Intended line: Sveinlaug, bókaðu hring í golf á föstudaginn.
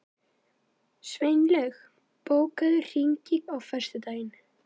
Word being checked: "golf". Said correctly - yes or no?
no